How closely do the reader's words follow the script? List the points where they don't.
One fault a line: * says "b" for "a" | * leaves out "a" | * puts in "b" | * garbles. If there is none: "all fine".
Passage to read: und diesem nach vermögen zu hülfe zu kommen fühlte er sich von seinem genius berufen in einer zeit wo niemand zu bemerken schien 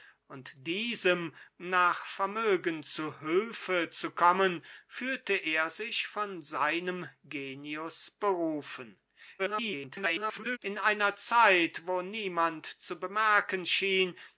* garbles